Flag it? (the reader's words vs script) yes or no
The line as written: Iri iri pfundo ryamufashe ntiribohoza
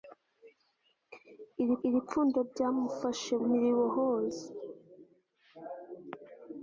no